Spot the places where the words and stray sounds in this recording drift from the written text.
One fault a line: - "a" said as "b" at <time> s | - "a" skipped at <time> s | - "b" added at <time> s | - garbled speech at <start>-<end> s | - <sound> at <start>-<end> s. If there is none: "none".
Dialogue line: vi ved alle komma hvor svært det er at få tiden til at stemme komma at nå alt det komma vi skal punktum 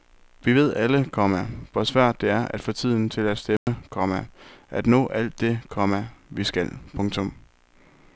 - dropout at 3.6-3.7 s